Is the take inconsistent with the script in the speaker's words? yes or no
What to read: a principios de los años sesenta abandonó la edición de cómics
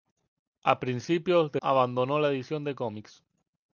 yes